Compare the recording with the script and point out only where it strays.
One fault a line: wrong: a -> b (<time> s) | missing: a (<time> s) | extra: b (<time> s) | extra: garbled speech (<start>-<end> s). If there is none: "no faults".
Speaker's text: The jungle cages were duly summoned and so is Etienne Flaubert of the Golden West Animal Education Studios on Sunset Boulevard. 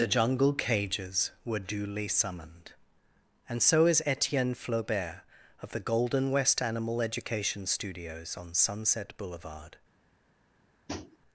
no faults